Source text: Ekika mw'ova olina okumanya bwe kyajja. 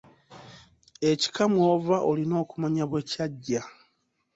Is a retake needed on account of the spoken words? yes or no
no